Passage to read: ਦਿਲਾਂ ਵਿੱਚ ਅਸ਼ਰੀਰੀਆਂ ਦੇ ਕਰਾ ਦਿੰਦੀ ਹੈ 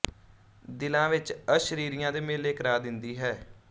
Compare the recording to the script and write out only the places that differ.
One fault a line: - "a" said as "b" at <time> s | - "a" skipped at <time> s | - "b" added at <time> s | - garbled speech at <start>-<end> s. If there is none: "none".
- "ਮੇਲੇ" added at 2.2 s